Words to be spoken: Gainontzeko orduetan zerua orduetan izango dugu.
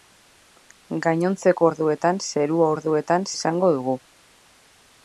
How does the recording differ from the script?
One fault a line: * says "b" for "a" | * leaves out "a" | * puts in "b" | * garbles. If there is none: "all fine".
all fine